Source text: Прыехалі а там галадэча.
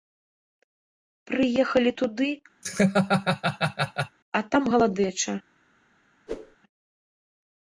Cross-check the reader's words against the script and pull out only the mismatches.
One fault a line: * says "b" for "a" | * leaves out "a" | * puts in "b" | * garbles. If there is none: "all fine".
* puts in "туды"